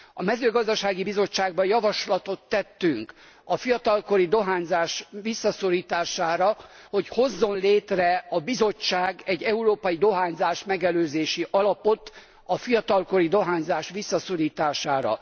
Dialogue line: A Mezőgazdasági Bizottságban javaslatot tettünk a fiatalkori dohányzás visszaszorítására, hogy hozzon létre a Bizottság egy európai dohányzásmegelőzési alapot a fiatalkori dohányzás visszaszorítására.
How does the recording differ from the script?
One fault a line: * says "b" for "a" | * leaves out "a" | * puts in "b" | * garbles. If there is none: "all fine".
all fine